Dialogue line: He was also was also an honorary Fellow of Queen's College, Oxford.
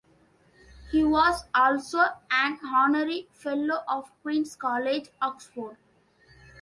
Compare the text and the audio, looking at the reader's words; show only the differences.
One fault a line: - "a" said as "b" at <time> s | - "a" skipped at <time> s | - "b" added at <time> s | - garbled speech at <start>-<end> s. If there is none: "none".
- "was also" skipped at 2.0 s